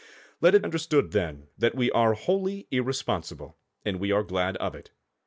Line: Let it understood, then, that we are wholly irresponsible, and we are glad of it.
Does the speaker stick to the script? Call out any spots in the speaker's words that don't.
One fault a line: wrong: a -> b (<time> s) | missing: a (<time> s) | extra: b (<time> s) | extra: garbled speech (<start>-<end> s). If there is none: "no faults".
no faults